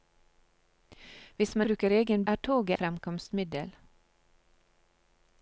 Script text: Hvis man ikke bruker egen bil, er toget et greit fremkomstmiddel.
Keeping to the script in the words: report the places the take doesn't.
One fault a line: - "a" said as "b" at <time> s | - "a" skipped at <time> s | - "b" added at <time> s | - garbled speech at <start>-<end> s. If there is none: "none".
- "ikke" skipped at 1.7 s
- "bil" skipped at 2.2 s
- "et greit" skipped at 2.8 s